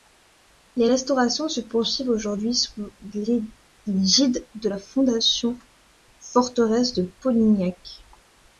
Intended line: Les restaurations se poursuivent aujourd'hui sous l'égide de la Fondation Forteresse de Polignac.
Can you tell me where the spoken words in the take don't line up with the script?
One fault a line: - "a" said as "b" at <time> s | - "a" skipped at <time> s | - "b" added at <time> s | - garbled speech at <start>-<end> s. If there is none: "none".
none